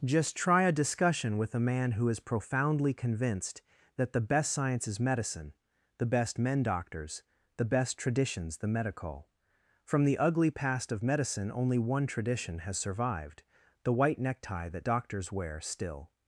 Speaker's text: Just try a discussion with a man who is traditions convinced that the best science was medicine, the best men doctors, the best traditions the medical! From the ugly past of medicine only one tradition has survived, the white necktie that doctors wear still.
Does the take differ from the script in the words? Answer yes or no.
yes